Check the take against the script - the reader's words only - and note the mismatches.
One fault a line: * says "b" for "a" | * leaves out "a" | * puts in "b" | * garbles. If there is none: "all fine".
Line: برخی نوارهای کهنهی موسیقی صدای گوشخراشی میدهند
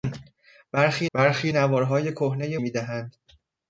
* puts in "برخی"
* leaves out "موسیقی صدای گوشخراشی"